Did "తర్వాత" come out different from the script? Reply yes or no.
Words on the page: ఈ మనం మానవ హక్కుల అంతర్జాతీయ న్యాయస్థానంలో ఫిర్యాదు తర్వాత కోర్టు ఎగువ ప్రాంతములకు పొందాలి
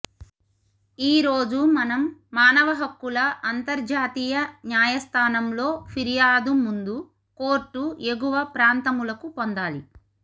yes